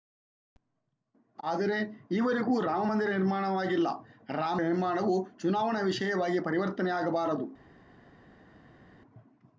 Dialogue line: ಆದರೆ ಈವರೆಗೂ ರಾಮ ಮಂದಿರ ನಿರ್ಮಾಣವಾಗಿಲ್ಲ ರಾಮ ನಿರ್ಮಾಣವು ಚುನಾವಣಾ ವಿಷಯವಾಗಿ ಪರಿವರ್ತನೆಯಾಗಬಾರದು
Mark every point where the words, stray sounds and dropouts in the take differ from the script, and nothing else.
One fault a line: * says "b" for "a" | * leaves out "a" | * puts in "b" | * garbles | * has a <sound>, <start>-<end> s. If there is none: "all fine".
all fine